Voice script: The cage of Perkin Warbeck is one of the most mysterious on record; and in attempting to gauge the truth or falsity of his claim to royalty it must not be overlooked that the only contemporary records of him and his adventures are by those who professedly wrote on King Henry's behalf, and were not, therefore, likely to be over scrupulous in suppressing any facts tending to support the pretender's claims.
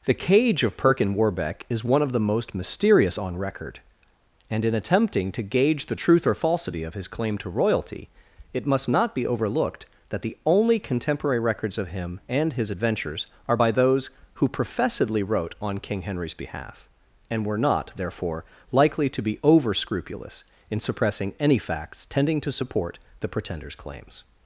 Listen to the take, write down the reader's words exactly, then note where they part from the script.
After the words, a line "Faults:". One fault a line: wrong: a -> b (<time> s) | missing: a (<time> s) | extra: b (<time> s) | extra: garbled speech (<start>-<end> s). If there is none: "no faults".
The cage of Perkin Warbeck is one of the most mysterious on record; and in attempting to gauge the truth or falsity of his claim to royalty it must not be overlooked that the only contemporary records of him and his adventures are by those who professedly wrote on King Henry's behalf, and were not, therefore, likely to be over scrupulous in suppressing any facts tending to support the pretender's claims.
Faults:
no faults